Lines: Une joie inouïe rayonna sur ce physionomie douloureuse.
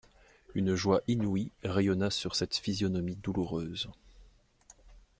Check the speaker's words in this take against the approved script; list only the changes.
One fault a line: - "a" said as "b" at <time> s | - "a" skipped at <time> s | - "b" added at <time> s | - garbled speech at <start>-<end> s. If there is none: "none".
- "ce" said as "cette" at 2.4 s